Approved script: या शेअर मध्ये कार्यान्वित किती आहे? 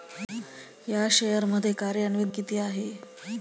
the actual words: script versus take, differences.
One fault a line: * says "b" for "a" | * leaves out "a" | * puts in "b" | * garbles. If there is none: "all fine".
all fine